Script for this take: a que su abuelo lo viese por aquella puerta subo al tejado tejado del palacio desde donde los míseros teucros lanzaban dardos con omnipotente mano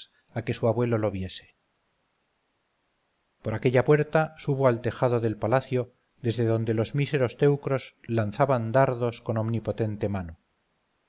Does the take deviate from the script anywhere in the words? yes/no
yes